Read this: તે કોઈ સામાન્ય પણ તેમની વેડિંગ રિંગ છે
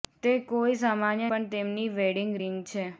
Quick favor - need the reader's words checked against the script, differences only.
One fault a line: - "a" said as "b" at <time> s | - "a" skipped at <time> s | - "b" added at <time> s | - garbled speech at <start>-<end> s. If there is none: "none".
none